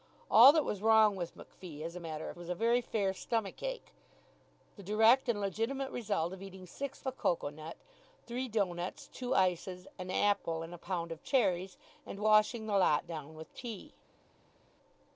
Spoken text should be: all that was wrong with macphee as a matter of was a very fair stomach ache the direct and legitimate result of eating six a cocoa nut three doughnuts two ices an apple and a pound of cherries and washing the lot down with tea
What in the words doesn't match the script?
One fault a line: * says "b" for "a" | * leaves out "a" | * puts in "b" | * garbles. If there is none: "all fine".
all fine